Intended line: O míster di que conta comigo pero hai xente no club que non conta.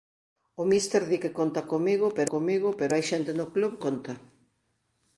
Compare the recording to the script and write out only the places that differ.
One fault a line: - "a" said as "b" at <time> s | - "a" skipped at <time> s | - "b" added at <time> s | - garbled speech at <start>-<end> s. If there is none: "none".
- "comigo pero" added at 2.3 s
- "que non" skipped at 3.7 s